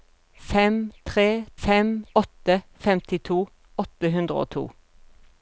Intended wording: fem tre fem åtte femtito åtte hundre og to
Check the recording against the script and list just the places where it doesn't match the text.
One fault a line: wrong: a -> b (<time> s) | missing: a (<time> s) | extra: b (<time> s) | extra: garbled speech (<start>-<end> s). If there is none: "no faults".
no faults